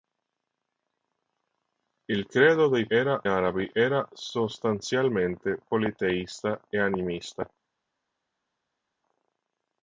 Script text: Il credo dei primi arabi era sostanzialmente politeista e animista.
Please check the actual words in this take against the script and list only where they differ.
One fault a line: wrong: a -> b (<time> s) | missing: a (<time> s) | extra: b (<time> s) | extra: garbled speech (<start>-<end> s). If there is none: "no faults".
wrong: primi -> era (2.9 s)